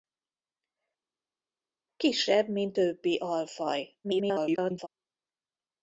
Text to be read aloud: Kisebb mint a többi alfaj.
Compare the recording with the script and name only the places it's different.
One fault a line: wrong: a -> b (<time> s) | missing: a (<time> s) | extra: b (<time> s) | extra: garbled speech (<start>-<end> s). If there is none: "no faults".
missing: a (2.8 s)
extra: garbled speech (4.0-4.9 s)